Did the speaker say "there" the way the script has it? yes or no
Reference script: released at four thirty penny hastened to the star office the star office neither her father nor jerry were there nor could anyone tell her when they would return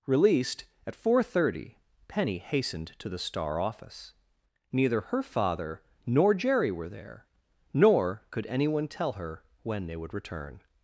yes